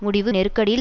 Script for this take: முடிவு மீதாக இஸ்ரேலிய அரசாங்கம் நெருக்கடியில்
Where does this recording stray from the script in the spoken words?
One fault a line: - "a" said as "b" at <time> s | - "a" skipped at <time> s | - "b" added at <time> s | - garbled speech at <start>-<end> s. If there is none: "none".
- "மீதாக இஸ்ரேலிய அரசாங்கம்" skipped at 0.3 s